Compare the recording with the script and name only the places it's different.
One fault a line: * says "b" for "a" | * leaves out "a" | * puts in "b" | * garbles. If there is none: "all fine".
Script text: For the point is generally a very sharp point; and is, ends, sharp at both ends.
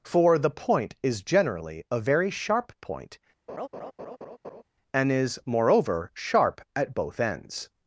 * says "moreover" for "ends"